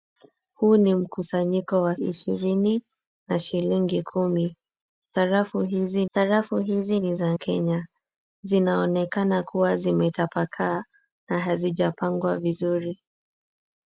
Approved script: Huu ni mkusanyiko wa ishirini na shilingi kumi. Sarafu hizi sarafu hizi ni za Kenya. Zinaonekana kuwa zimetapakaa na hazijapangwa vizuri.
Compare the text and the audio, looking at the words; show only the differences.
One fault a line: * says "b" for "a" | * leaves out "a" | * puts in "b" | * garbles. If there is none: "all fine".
all fine